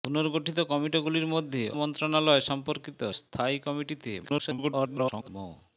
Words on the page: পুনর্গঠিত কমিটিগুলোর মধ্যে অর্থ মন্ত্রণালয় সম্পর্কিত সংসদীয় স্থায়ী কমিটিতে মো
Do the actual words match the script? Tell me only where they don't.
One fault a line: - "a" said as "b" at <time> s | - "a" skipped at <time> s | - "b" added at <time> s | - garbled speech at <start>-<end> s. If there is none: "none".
- "অর্থ" skipped at 1.6 s
- "সংসদীয়" skipped at 3.0 s
- garbled speech at 4.2-5.3 s